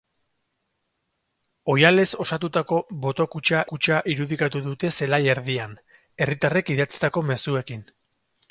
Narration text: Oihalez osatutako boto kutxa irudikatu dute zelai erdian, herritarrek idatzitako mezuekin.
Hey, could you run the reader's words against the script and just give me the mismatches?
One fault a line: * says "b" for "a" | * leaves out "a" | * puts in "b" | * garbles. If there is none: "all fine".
* puts in "kutxa"